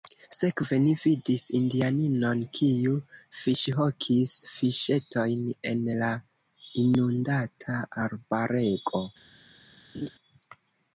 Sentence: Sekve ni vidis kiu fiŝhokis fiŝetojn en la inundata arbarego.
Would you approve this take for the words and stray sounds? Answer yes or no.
no